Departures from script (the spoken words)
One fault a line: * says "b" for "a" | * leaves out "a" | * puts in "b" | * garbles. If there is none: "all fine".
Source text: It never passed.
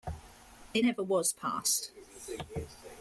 * puts in "was"